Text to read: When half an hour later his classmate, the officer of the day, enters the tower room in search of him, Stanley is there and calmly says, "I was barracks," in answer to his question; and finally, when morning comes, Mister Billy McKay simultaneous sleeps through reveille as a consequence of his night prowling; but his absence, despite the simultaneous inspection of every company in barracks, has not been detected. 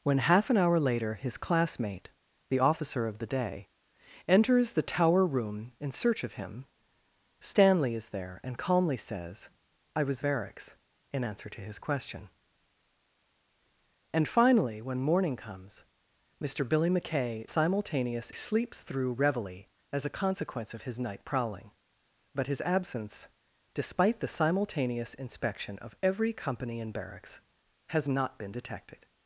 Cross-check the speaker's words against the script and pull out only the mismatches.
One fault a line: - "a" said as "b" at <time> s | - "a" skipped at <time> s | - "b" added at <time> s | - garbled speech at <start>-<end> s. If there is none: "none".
none